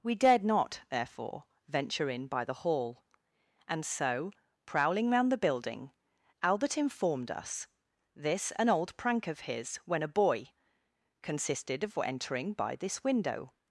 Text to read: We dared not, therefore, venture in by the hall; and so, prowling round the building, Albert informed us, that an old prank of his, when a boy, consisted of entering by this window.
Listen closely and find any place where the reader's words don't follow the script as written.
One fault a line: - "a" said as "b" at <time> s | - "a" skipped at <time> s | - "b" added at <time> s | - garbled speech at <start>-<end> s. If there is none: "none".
- "that" said as "this" at 8.2 s